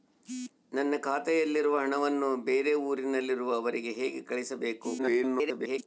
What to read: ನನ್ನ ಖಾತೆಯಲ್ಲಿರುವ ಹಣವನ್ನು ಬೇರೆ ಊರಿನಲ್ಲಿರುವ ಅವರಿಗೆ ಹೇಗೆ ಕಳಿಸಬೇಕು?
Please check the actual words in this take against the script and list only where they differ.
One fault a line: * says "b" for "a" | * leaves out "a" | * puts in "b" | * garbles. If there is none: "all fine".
* garbles